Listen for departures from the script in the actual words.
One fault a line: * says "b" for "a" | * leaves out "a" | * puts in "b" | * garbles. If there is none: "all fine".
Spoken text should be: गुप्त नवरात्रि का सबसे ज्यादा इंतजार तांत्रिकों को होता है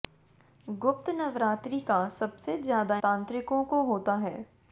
* leaves out "इंतजार"